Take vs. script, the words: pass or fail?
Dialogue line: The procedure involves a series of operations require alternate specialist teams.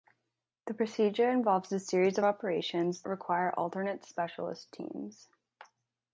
pass